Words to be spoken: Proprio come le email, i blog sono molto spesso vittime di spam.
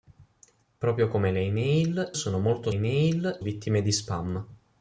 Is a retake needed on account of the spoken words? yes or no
yes